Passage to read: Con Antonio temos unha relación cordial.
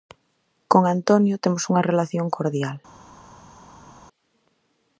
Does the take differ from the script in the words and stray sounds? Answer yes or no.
no